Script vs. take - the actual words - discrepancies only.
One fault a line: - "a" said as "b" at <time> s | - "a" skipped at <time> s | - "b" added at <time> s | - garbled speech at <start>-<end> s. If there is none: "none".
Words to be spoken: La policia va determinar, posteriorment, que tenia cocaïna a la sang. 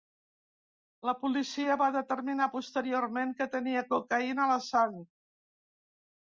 none